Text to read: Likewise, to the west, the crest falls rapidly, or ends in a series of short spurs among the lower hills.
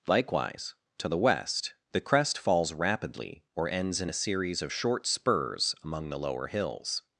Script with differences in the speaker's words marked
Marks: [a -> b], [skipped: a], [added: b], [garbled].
Likewise, to the west, the crest falls rapidly, or ends in a series of short spurs among the lower hills.